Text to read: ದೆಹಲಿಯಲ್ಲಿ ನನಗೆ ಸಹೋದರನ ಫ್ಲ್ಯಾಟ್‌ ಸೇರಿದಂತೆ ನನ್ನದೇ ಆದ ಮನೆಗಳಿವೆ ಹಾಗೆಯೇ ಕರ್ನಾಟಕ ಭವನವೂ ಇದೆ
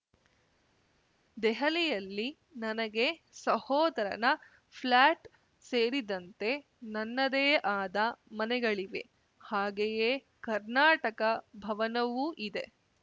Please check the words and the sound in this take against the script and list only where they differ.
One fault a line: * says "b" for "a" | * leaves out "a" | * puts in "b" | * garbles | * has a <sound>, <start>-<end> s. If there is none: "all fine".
all fine